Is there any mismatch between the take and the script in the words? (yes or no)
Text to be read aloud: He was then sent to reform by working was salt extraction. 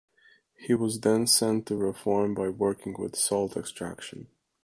yes